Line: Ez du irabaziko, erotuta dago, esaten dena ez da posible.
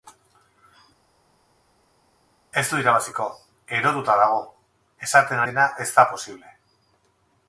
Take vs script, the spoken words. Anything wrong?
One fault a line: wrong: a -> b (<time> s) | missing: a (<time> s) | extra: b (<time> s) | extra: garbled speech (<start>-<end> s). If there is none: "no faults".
no faults